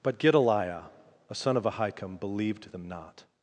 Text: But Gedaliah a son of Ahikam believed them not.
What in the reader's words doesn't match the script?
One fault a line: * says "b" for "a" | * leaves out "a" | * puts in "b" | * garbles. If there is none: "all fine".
all fine